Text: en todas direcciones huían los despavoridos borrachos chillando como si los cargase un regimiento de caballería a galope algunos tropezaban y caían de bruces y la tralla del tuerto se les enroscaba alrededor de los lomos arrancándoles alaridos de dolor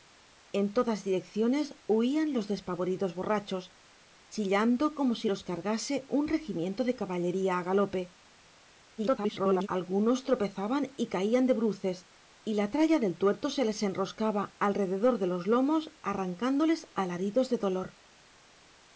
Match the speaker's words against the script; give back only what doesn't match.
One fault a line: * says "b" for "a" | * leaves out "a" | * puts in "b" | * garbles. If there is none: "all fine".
* garbles